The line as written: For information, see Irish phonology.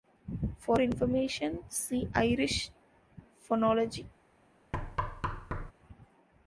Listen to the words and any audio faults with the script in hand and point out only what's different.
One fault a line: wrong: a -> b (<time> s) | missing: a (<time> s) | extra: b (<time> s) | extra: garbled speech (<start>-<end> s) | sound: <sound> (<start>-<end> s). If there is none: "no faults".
sound: thud (4.7-5.7 s)